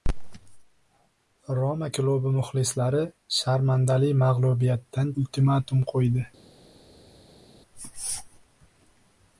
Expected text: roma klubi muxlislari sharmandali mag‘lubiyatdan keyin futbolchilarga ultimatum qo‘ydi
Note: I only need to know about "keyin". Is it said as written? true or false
false